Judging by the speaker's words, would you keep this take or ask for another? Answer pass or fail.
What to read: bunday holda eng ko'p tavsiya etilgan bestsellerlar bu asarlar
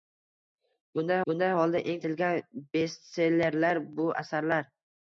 fail